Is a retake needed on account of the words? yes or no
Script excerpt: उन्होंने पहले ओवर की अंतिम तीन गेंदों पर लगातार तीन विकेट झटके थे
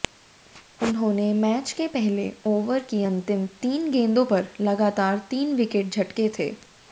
yes